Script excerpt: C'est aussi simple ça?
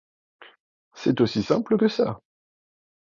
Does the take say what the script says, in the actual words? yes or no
no